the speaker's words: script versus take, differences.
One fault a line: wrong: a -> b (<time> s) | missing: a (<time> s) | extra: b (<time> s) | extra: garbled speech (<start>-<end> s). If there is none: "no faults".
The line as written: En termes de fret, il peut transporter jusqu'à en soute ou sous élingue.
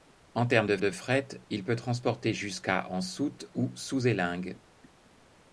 extra: de (0.8 s)